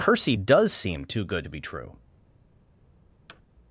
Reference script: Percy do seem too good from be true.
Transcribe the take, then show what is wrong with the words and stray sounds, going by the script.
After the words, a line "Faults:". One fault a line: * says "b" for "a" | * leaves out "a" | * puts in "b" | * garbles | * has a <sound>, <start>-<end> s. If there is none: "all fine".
Percy does seem too good to be true.
Faults:
* says "does" for "do"
* says "to" for "from"
* has a thud, 3.3-3.4 s